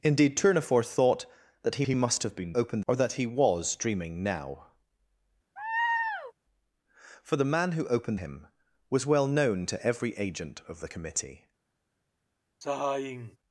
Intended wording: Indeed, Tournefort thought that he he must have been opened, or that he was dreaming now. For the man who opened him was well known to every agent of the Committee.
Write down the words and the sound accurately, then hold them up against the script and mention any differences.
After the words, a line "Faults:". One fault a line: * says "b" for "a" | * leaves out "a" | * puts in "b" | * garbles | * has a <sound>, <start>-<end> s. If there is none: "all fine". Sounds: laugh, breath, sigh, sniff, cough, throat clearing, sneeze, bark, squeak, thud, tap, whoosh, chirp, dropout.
Indeed, Tournefort thought that he he must have been opened, or that he was dreaming now. For the man who opened him was well known to every agent of the Committee.
Faults:
* has a laugh, 5.6-6.3 s
* has a sigh, 12.6-13.4 s